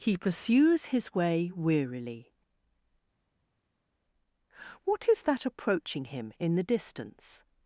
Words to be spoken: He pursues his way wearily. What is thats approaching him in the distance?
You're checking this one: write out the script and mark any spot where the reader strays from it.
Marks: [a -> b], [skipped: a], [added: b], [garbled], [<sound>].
He pursues his way wearily. What is [thats -> that] approaching him in the distance?